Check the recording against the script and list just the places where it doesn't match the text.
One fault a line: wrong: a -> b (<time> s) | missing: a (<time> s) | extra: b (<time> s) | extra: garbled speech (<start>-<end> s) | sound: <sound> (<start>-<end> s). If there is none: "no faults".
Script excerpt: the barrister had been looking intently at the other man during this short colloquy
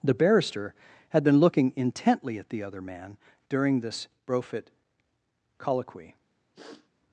wrong: short -> brofit (4.2 s)
sound: sniff (6.5-6.9 s)